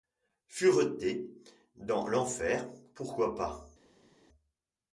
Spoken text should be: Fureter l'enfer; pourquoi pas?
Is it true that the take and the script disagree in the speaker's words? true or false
true